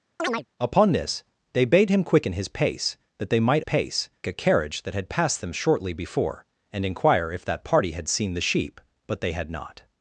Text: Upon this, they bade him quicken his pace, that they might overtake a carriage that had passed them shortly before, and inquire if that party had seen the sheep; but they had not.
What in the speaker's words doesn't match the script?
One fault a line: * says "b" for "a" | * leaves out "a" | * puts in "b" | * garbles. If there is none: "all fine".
* says "pace" for "overtake"